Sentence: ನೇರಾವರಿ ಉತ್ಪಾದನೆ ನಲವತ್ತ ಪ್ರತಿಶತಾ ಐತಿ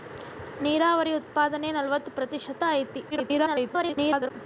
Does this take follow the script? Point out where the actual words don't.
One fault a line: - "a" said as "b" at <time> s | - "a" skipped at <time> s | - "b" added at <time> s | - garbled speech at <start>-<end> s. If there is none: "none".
- garbled speech at 3.1-4.3 s